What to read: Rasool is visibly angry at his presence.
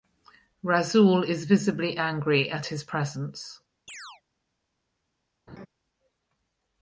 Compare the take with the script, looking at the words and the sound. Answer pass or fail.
fail